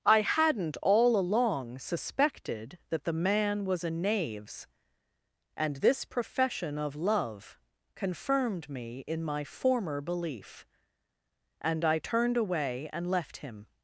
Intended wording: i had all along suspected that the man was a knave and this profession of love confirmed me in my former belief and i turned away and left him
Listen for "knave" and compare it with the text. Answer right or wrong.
wrong